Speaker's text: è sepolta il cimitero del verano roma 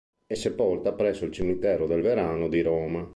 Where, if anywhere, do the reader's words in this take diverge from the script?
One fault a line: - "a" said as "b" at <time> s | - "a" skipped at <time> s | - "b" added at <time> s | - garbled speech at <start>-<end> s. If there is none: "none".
- "presso" added at 0.9 s
- "di" added at 2.5 s